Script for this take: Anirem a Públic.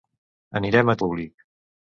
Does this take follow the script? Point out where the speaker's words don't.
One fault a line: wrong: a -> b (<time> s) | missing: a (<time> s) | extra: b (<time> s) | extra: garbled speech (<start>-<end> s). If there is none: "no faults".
no faults